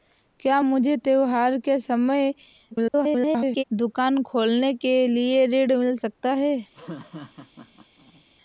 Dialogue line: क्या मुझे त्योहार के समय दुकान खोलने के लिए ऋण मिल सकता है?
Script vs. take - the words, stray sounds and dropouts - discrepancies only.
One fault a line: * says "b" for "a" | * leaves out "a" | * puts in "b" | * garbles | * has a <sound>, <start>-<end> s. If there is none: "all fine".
* garbles
* has a laugh, 6.7-8.2 s